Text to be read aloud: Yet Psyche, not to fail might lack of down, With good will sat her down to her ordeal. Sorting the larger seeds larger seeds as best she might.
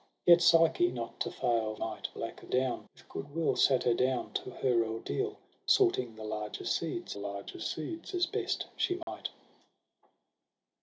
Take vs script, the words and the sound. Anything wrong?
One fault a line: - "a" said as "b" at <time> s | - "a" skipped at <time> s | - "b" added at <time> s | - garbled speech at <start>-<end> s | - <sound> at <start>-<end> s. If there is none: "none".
- dropout at 9.0-9.1 s